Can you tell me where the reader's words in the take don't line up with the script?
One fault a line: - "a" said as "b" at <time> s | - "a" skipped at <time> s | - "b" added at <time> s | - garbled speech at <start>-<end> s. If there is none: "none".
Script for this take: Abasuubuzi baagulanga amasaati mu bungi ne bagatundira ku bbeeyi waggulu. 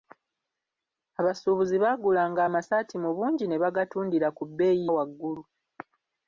none